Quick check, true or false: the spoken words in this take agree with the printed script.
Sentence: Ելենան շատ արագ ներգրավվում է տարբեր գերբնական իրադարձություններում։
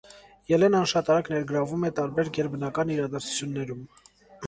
true